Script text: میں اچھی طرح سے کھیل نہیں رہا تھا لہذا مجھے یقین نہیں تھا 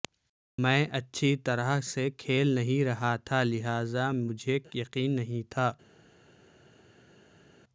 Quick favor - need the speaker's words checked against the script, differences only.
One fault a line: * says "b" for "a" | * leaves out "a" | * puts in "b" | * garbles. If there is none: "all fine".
all fine